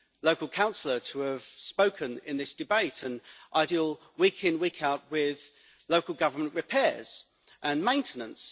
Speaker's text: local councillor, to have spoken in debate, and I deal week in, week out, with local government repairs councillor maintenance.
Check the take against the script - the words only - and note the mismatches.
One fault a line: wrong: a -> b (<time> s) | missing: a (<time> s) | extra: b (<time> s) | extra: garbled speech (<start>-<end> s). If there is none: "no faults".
extra: this (2.4 s)
wrong: councillor -> and (7.6 s)